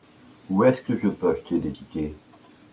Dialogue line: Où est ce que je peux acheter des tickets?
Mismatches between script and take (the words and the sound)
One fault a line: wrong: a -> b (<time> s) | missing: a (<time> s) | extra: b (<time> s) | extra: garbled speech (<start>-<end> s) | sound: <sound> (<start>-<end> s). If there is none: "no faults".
no faults